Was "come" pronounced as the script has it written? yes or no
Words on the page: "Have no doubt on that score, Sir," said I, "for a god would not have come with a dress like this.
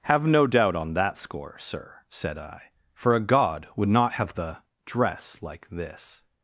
no